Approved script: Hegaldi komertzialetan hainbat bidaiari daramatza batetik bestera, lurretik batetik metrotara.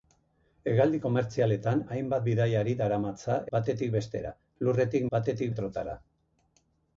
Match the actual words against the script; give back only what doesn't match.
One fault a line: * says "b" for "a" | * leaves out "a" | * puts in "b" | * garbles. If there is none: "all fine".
all fine